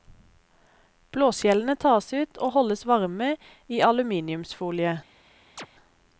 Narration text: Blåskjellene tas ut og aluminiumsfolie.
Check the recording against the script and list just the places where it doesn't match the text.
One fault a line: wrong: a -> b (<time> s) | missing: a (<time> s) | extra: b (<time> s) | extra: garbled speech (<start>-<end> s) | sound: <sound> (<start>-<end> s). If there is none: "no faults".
extra: holdes varme i (2.6 s)
sound: chirp (5.6-5.7 s)